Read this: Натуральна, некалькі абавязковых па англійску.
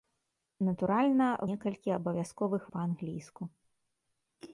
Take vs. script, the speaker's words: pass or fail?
pass